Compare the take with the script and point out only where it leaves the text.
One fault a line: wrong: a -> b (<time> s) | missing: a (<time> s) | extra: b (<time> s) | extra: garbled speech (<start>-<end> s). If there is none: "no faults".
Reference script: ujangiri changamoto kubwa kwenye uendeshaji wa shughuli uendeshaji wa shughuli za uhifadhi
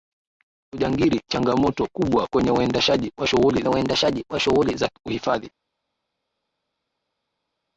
no faults